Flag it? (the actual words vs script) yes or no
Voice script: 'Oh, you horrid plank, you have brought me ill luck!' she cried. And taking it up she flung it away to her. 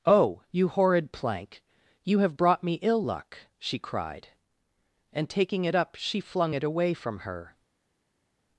yes